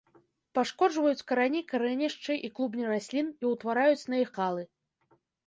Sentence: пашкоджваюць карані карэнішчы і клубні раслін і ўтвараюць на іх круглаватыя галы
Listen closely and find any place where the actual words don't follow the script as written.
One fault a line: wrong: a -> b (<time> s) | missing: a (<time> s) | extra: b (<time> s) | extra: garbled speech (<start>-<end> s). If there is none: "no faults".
missing: круглаватыя (4.3 s)